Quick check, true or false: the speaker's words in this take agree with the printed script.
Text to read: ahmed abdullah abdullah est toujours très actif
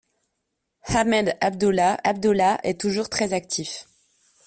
true